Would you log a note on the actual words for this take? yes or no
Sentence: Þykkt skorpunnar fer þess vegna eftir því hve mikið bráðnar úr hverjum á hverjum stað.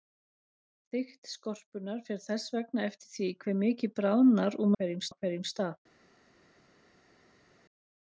no